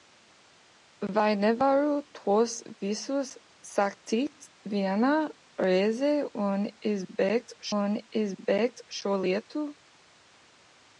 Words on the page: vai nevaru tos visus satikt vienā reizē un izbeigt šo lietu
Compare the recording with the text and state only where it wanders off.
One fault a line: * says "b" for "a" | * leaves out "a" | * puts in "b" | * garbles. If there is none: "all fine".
* puts in "un izbeigt"